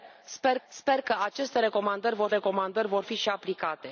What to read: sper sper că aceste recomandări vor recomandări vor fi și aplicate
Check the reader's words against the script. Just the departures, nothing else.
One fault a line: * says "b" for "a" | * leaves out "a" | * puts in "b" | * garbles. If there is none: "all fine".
all fine